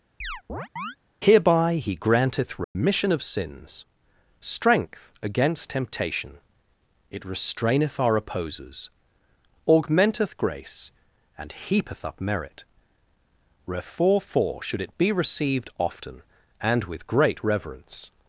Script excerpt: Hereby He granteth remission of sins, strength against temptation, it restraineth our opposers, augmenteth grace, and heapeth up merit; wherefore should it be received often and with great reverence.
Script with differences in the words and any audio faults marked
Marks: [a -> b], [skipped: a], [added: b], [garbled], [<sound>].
[chirp] Hereby He granteth remission [dropout] of sins, strength against temptation, it restraineth our opposers, augmenteth grace, and heapeth up merit; wherefore [added: for] should it be received often and with great reverence.